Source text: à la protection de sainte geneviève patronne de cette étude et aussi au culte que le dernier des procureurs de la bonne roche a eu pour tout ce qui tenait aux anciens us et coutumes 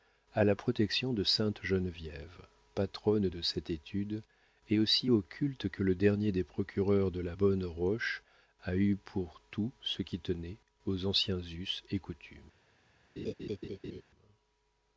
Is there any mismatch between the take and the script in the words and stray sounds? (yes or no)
yes